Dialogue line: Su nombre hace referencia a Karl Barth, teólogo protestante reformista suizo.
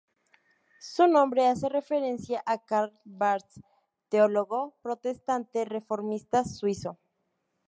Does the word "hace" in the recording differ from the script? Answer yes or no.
no